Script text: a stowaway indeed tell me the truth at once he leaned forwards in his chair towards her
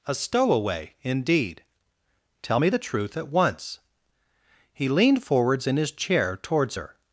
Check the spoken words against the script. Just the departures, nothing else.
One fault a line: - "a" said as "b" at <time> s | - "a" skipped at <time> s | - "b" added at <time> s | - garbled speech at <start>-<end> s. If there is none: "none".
none